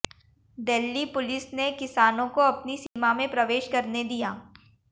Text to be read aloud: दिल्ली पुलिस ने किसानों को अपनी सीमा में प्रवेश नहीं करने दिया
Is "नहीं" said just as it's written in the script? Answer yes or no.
no